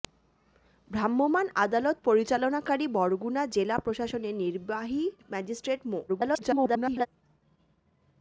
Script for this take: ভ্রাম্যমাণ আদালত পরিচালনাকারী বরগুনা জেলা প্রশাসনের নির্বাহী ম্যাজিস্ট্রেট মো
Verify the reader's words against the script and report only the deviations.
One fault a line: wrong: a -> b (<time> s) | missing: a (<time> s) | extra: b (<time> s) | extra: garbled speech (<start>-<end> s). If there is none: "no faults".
extra: garbled speech (6.1-7.1 s)